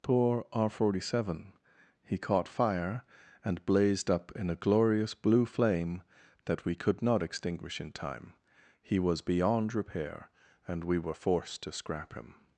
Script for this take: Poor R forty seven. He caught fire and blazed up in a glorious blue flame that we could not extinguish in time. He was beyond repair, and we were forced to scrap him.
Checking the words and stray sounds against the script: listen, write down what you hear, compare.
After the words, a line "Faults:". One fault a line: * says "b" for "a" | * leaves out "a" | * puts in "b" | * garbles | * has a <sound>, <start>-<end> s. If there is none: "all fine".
Poor R forty seven. He caught fire and blazed up in a glorious blue flame that we could not extinguish in time. He was beyond repair, and we were forced to scrap him.
Faults:
all fine